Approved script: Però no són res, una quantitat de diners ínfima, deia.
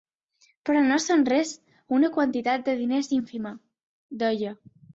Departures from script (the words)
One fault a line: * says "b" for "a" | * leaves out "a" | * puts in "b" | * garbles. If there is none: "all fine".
all fine